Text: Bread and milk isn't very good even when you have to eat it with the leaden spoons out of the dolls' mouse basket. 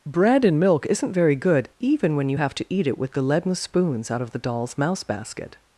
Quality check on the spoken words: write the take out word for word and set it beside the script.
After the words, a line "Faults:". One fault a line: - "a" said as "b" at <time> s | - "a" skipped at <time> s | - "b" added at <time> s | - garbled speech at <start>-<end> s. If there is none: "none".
Bread and milk isn't very good even when you have to eat it with the leaden spoons out of the dolls' mouse basket.
Faults:
none